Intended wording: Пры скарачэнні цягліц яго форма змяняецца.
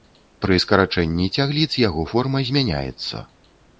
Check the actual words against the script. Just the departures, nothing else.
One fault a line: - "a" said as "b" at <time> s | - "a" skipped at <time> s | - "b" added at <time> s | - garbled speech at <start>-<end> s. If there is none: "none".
none